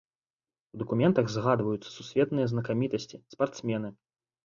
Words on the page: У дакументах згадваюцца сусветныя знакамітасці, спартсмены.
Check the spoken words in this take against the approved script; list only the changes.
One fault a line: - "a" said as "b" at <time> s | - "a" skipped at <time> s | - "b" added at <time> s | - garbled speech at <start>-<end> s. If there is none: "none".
none